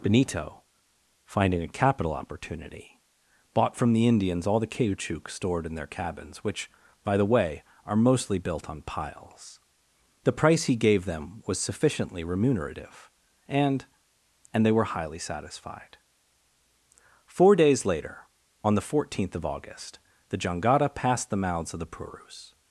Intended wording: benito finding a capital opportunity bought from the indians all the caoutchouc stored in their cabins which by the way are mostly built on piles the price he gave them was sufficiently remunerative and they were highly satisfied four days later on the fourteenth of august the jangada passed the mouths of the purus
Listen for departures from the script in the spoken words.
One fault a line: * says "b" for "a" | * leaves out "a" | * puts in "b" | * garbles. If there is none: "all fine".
* puts in "and"